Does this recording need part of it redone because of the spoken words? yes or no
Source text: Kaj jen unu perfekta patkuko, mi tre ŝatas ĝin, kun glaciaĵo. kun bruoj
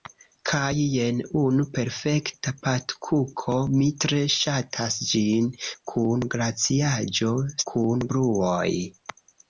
no